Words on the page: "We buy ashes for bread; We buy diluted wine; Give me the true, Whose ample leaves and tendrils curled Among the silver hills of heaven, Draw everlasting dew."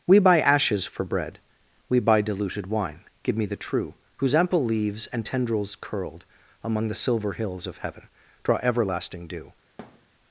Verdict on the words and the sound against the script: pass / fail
fail